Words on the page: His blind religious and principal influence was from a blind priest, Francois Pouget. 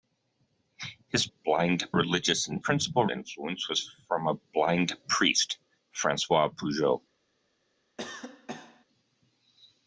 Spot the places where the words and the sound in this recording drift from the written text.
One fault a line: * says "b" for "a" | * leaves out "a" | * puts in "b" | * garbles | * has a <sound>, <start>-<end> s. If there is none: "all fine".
* has a cough, 8.0-8.8 s